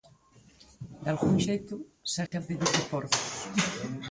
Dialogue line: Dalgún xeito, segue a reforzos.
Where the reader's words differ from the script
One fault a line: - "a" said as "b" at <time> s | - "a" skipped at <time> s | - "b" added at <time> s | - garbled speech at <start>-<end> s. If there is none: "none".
- "pedir" added at 2.5 s